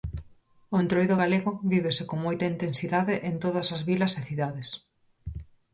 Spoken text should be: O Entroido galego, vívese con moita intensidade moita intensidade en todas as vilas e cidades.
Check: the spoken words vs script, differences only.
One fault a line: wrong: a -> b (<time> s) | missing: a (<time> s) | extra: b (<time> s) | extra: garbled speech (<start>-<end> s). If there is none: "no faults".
missing: moita intensidade (3.1 s)